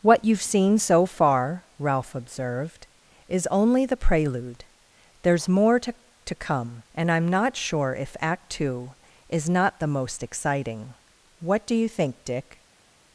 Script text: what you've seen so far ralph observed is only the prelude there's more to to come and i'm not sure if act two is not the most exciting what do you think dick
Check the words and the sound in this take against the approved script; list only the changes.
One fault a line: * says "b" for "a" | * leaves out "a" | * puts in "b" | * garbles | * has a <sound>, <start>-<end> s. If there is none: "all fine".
all fine